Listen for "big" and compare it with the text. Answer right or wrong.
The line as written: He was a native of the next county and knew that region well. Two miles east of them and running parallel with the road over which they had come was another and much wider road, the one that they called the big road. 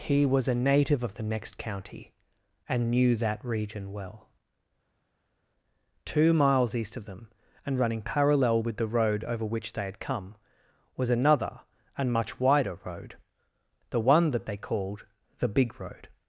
right